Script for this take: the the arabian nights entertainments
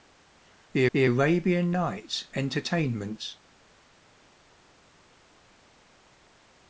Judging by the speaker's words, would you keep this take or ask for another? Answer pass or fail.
pass